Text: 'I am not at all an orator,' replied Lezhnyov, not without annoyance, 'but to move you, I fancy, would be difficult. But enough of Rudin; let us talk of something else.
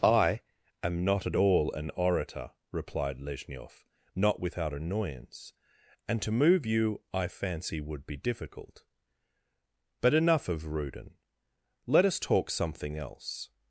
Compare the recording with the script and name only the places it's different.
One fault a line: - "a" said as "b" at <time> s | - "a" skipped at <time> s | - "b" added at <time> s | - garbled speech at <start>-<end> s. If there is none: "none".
- "but" said as "and" at 6.1 s
- "of" skipped at 12.5 s